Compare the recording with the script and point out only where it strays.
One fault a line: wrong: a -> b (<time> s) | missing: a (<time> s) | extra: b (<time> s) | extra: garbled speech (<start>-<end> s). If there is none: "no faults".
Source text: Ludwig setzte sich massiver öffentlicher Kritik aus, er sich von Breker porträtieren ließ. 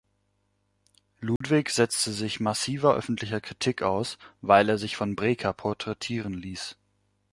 extra: weil (4.4 s)